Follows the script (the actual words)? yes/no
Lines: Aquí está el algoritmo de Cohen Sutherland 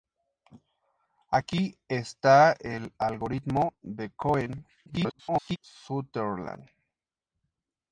no